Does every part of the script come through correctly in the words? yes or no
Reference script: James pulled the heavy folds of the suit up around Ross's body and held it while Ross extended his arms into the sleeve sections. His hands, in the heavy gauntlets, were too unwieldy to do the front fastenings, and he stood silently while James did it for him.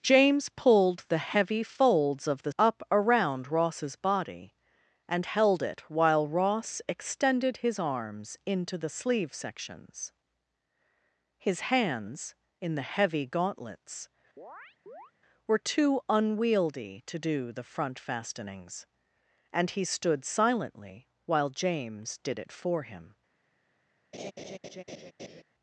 no